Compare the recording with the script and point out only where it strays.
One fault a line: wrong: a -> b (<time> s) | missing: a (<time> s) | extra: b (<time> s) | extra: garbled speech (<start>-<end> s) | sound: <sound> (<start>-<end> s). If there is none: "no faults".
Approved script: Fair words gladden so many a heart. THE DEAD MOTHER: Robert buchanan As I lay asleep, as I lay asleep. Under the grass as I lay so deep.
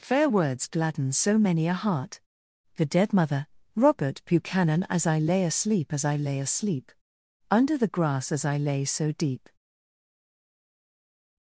no faults